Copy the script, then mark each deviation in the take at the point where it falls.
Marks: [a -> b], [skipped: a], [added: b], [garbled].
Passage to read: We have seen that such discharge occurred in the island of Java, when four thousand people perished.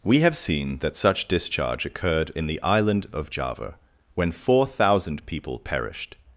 We have seen that such discharge occurred in the island of Java, when four thousand people perished.